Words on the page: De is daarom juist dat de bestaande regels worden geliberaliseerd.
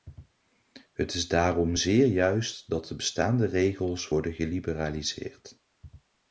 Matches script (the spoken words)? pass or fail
fail